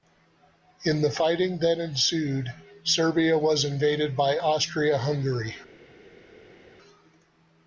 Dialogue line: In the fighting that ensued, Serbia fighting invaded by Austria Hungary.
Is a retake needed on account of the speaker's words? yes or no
yes